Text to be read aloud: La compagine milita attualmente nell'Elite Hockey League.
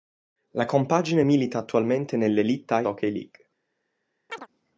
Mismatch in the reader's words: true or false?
false